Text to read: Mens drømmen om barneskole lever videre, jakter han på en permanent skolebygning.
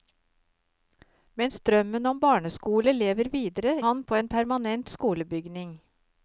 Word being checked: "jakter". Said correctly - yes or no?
no